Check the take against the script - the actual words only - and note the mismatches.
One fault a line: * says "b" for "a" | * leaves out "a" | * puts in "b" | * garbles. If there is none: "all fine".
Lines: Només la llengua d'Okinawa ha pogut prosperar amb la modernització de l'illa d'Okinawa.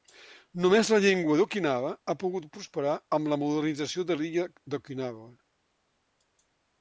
all fine